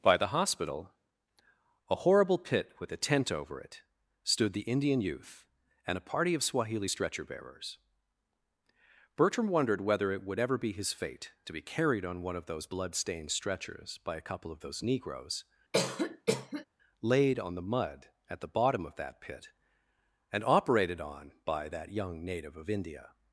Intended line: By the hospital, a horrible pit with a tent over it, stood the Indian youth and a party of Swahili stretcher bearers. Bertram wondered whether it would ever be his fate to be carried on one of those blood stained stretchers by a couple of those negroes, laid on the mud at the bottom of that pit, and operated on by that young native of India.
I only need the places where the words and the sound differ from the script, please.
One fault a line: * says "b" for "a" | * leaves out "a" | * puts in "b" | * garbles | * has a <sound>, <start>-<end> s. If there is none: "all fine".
* has a cough, 15.7-16.7 s